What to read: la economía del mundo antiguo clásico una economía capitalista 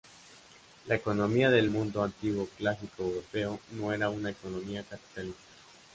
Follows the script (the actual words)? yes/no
no